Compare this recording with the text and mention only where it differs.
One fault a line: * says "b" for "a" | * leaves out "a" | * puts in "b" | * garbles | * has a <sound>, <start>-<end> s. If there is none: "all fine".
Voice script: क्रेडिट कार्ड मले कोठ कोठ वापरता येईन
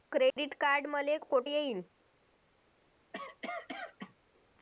* has a dropout, 0.3-0.4 s
* leaves out "कोठ वापरता"
* has a cough, 3.1-4.2 s